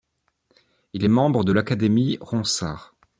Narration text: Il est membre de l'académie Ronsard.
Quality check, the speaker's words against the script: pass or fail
pass